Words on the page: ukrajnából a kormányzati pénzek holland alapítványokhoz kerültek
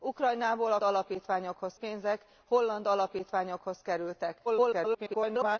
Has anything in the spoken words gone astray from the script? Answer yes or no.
yes